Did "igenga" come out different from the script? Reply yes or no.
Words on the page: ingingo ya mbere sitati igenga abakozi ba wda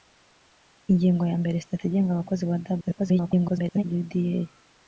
no